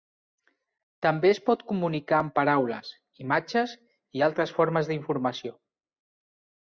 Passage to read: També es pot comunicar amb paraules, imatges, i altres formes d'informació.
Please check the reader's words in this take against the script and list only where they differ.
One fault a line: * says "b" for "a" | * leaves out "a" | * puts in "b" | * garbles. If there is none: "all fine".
all fine